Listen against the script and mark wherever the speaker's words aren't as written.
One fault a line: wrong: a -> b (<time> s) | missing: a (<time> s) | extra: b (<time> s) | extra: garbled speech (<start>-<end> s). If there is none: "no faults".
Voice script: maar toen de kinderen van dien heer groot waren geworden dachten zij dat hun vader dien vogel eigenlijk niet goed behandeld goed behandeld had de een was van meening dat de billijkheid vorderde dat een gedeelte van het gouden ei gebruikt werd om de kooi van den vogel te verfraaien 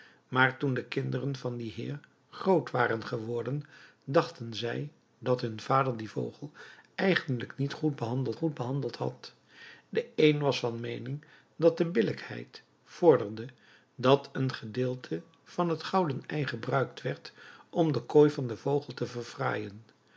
no faults